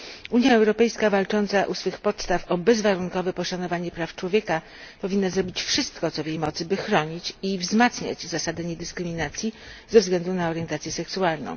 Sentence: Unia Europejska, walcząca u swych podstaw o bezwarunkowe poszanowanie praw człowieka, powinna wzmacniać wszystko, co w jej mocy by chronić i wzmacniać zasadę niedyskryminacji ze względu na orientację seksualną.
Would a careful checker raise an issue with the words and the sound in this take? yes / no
yes